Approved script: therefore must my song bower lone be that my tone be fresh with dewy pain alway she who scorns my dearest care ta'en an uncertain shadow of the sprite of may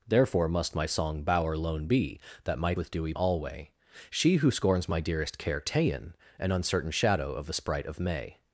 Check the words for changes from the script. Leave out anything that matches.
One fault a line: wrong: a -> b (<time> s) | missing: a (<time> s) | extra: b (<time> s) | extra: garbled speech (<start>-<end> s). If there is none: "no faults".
missing: tone be fresh (2.7 s)
missing: pain (3.1 s)